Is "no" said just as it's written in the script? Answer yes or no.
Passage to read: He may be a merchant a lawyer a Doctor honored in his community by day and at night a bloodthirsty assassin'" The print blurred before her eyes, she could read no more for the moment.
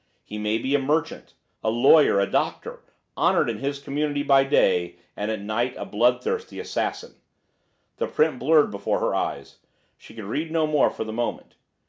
yes